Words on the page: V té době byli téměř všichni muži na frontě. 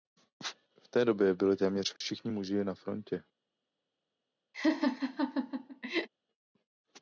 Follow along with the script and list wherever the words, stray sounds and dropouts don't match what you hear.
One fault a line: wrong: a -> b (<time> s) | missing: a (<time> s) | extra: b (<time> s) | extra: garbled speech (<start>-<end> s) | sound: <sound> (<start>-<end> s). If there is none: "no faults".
sound: dropout (2.0-2.0 s)
sound: laugh (4.5-6.1 s)